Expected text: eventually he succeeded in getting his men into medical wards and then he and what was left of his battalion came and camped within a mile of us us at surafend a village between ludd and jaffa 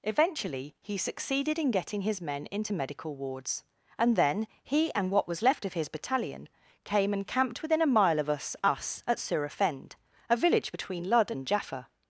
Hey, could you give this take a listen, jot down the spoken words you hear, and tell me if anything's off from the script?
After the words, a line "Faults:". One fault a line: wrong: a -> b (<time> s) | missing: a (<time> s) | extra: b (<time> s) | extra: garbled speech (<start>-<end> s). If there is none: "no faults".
eventually he succeeded in getting his men into medical wards and then he and what was left of his battalion came and camped within a mile of us us at surafend a village between ludd and jaffa
Faults:
no faults